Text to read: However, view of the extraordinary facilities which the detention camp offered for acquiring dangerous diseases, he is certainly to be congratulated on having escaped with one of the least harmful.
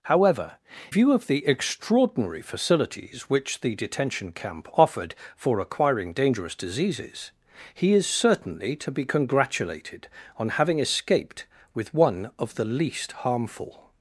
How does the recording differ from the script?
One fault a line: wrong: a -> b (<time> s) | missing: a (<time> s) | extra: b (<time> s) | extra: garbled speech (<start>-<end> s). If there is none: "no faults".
no faults